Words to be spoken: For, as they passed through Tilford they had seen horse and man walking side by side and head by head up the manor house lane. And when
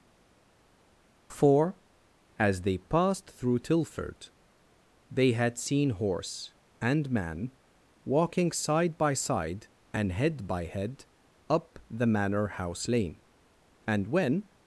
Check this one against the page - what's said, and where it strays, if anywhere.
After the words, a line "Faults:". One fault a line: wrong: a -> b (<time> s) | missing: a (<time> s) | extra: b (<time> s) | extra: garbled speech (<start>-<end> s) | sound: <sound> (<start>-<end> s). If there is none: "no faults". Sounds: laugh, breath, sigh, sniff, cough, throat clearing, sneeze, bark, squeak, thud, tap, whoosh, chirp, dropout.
For, as they passed through Tilford they had seen horse and man walking side by side and head by head up the manor house lane. And when
Faults:
no faults